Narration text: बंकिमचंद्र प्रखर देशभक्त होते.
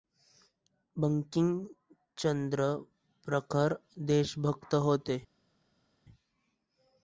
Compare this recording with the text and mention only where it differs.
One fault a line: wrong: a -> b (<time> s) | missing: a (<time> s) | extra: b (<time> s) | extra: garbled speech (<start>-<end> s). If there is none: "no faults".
no faults